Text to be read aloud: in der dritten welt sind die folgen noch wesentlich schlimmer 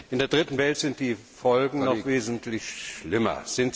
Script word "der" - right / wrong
right